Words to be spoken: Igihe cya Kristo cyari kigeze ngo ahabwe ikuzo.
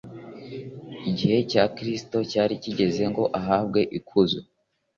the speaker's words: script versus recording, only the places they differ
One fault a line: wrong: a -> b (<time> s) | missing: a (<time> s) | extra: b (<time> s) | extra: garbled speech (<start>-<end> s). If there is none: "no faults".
no faults